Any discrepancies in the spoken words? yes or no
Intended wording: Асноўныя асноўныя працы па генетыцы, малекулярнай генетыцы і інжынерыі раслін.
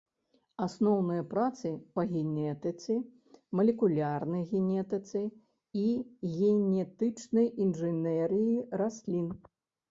yes